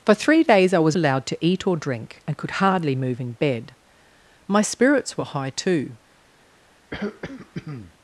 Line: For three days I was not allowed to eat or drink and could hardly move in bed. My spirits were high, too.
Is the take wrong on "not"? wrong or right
wrong